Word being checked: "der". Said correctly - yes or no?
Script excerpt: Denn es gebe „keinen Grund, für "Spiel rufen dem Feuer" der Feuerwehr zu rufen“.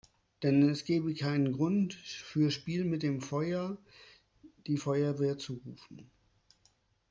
no